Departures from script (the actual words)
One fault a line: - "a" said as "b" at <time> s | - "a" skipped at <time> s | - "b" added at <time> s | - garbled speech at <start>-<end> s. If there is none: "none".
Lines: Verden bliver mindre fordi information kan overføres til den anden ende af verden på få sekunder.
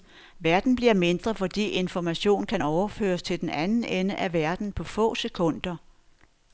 none